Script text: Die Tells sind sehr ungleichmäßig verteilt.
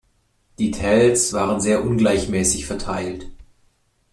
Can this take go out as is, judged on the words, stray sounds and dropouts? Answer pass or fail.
fail